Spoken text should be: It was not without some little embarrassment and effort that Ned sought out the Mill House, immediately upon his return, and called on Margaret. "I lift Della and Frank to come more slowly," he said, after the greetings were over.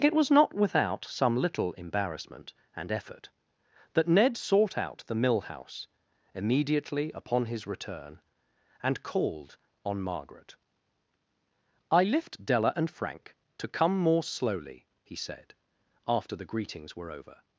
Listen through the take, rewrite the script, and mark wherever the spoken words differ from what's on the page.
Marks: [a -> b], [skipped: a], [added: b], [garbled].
It was not without some little embarrassment and effort that Ned sought out the Mill House, immediately upon his return, and called on Margaret. "I lift Della and Frank to come more slowly," he said, after the greetings were over.